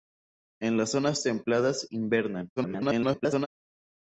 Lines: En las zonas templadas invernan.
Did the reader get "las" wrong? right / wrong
right